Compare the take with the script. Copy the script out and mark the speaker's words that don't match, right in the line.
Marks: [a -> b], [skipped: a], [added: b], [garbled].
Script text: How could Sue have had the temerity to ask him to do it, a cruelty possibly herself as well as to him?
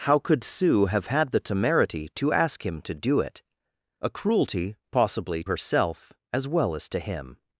How could Sue have had the temerity to ask him to do it, a cruelty possibly herself as well as to him?